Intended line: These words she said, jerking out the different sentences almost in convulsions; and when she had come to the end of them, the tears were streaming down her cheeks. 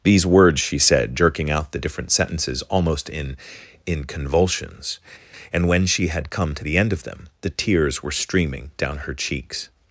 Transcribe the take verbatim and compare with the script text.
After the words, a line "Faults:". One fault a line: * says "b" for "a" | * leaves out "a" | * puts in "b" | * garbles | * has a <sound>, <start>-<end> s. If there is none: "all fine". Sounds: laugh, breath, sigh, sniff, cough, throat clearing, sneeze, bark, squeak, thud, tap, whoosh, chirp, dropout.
These words she said, jerking out the different sentences almost in in convulsions; and when she had come to the end of them, the tears were streaming down her cheeks.
Faults:
* puts in "in"